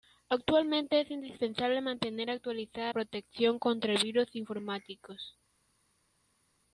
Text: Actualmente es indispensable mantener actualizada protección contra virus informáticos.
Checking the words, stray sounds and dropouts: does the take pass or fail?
pass